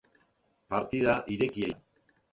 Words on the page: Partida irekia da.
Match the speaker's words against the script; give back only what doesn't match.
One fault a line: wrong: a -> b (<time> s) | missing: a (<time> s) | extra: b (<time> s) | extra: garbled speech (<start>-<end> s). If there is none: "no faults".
no faults